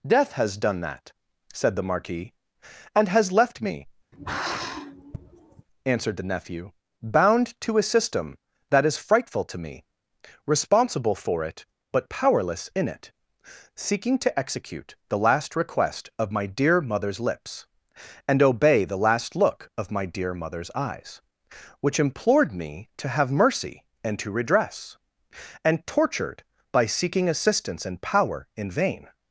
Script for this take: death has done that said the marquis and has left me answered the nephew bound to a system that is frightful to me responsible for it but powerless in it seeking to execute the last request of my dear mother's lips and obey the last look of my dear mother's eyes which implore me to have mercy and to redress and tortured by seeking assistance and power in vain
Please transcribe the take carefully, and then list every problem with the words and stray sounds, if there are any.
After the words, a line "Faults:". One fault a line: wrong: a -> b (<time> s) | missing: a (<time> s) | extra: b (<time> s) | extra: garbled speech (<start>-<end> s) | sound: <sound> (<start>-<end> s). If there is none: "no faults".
death has done that said the marquis and has left me answered the nephew bound to a system that is frightful to me responsible for it but powerless in it seeking to execute the last request of my dear mother's lips and obey the last look of my dear mother's eyes which implored me to have mercy and to redress and tortured by seeking assistance and power in vain
Faults:
sound: sigh (4.1-5.7 s)
wrong: implore -> implored (22.0 s)